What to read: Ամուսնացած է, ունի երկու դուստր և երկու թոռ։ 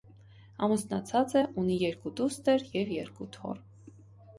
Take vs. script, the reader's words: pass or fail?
pass